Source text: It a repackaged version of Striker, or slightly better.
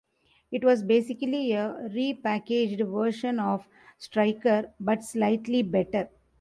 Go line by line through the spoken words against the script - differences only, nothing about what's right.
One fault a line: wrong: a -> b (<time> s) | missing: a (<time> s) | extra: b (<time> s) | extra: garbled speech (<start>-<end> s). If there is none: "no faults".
extra: was basically (0.6 s)
wrong: or -> but (4.8 s)